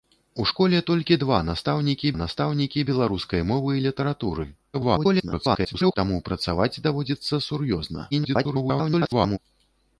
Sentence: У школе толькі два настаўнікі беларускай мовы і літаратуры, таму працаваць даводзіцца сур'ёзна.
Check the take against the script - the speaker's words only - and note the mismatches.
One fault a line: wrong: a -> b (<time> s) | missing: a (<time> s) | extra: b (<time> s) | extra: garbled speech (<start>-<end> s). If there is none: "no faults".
extra: настаўнікі (2.2 s)
extra: garbled speech (4.7-6.0 s)
extra: garbled speech (8.1-9.4 s)